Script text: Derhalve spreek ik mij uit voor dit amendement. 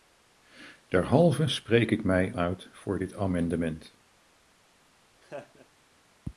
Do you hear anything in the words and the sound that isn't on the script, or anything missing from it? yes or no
yes